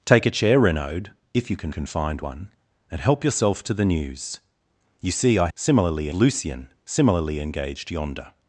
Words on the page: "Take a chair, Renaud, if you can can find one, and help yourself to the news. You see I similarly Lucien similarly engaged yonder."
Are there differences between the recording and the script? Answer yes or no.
no